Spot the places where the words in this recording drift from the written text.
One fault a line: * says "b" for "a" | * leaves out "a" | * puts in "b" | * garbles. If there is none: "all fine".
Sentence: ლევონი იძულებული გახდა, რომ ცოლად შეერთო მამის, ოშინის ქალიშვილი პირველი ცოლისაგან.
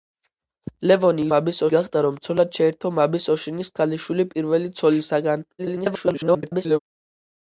* says "მამის" for "იძულებული"
* garbles